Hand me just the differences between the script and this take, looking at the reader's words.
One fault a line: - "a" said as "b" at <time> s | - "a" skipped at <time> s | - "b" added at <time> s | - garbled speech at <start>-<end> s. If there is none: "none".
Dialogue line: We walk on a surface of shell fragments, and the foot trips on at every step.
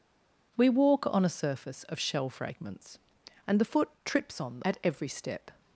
none